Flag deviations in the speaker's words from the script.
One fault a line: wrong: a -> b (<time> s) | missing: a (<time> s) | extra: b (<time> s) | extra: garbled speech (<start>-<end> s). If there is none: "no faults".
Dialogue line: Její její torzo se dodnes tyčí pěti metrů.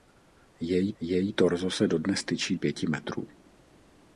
no faults